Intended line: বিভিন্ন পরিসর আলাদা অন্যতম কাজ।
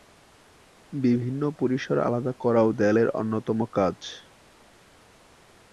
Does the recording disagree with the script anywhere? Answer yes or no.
yes